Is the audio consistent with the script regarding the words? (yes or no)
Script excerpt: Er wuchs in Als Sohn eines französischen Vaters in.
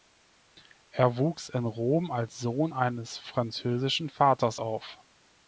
no